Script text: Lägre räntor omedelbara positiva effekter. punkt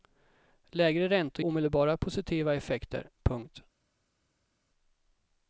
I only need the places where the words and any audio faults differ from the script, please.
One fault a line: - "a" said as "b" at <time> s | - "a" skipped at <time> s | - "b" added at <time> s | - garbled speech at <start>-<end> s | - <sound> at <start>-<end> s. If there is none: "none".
none